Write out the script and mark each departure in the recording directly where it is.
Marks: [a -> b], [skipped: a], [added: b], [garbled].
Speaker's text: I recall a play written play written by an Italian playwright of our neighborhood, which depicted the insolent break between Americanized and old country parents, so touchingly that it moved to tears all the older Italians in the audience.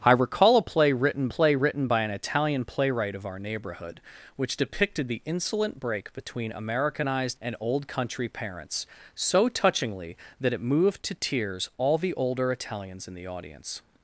I recall a play written play written by an Italian playwright of our neighborhood, which depicted the insolent break between Americanized and old country parents, so touchingly that it moved to tears all the older Italians in the audience.